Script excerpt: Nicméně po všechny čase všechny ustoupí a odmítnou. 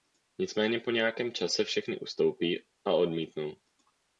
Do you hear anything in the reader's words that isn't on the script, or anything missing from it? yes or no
yes